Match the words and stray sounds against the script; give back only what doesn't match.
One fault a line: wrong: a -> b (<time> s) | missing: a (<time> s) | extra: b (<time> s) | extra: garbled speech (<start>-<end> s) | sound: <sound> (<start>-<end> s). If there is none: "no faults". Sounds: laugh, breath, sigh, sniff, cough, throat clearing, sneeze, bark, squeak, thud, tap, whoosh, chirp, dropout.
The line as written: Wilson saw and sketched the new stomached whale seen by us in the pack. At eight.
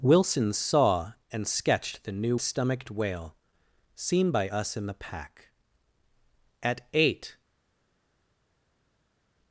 no faults